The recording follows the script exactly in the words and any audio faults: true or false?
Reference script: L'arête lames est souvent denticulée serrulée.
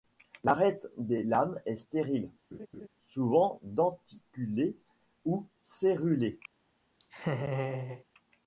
false